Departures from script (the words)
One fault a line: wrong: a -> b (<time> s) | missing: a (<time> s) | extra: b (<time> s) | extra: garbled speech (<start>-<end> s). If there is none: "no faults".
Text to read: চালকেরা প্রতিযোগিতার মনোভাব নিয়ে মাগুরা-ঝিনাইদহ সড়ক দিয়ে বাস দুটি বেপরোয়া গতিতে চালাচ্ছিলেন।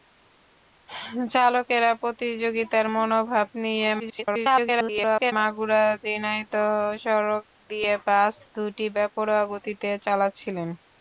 extra: garbled speech (4.0-5.3 s)